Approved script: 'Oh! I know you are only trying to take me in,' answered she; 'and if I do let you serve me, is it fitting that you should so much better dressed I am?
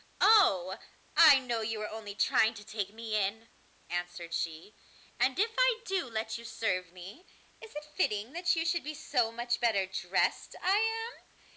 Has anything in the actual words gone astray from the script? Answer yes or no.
yes